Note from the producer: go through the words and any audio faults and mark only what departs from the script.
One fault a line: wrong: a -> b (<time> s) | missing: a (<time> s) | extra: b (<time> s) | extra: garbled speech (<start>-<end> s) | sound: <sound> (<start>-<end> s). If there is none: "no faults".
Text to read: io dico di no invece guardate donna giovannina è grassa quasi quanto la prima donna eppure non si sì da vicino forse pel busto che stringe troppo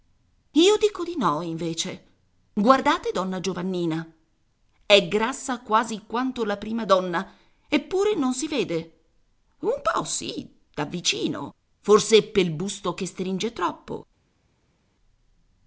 extra: vede un po (8.5 s)